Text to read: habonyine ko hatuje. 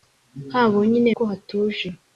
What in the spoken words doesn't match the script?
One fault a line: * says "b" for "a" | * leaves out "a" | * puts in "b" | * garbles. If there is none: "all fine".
all fine